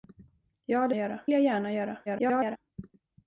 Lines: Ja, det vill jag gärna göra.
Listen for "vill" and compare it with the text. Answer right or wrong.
wrong